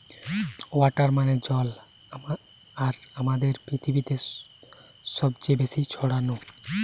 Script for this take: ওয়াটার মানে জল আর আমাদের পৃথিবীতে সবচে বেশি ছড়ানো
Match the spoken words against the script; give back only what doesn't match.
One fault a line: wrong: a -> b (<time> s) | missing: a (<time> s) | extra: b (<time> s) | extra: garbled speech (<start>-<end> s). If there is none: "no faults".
no faults